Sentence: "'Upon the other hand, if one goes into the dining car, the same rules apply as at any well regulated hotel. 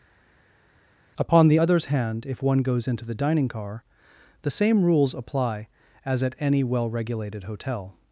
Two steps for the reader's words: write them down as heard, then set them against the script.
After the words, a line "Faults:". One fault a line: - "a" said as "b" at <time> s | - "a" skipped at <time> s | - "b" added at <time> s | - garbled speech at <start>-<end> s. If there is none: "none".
"'Upon the others hand, if one goes into the dining car, the same rules apply as at any well regulated hotel.
Faults:
- "other" said as "others" at 1.6 s